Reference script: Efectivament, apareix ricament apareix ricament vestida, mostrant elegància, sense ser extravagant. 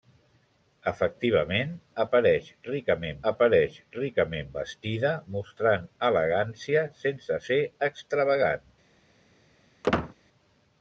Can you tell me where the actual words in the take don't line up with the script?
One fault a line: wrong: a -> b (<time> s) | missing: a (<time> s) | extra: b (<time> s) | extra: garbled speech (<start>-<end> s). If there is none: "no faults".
no faults